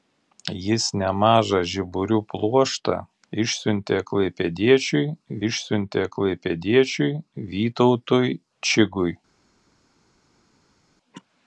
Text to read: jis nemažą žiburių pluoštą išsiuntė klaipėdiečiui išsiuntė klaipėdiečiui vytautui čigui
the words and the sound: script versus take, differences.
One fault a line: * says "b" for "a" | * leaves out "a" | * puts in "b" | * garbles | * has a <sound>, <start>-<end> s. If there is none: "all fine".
all fine